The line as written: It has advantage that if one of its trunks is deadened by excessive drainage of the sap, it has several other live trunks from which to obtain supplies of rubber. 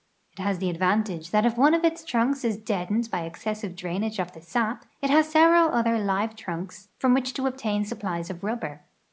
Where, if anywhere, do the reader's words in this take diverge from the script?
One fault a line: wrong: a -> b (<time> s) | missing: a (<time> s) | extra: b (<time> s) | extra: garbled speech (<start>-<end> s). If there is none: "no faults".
extra: the (0.6 s)